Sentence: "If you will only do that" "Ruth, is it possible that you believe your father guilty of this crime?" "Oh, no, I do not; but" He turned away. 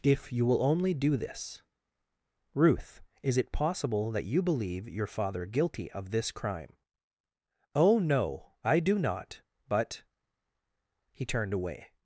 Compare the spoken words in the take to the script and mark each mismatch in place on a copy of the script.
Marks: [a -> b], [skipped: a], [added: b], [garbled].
"If you will only do [that" -> this] "Ruth, is it possible that you believe your father guilty of this crime?" "Oh, no, I do not; but" He turned away.